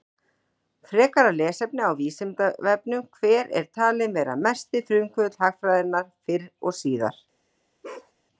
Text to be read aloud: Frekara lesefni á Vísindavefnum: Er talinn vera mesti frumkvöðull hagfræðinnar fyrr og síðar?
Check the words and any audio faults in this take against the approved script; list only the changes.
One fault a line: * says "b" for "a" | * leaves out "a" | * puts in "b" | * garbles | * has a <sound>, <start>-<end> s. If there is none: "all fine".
* puts in "Hver"
* has a bark, 7.8-8.1 s